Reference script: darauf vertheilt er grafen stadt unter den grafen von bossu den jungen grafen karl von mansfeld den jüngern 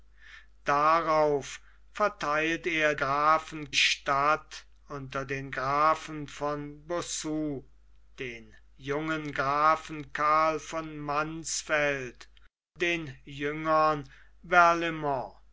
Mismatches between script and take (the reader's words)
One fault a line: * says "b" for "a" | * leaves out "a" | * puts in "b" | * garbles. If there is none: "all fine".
all fine